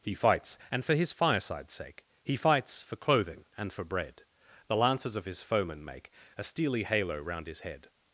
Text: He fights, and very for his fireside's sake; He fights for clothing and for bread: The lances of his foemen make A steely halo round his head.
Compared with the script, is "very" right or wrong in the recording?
wrong